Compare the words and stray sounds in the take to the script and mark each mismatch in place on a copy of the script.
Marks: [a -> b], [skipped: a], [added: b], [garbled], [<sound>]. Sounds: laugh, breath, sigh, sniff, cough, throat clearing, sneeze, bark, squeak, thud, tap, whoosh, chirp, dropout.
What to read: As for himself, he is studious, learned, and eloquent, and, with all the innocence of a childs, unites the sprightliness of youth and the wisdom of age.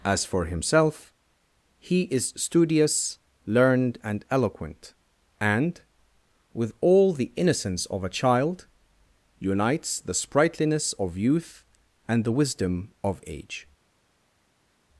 As for himself, he is studious, learned, and eloquent, and, with all the innocence of a [childs, -> child] unites the sprightliness of youth and the wisdom of age.